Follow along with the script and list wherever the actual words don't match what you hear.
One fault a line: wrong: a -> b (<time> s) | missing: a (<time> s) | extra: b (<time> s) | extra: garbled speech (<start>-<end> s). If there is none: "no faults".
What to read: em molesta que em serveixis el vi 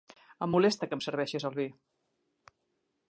no faults